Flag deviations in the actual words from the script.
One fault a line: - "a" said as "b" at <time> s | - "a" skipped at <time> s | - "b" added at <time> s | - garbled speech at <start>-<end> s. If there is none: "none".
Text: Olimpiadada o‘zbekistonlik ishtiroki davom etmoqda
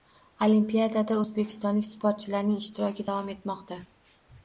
- "sportchilarning" added at 1.9 s